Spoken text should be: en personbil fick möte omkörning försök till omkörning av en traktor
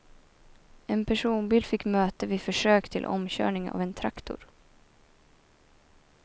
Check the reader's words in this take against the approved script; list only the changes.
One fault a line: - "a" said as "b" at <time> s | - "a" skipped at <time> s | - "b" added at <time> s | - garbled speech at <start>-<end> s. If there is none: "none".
- "omkörning" said as "vid" at 2.2 s